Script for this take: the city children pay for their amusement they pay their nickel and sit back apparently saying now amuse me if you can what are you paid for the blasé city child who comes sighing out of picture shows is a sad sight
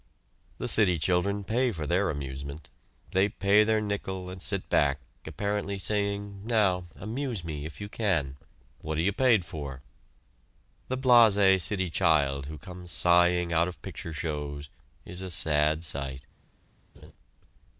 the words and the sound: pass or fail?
fail